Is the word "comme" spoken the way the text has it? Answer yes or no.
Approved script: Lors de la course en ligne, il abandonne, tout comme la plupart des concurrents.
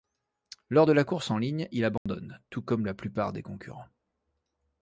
yes